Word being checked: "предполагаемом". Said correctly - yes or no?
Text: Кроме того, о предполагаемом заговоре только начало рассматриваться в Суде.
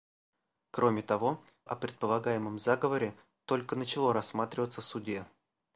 yes